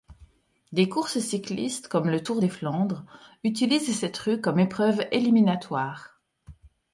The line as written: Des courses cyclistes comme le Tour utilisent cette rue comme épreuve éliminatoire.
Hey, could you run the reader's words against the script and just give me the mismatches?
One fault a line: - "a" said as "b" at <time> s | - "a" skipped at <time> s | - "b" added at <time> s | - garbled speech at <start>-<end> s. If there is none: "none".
- "des Flandres" added at 2.4 s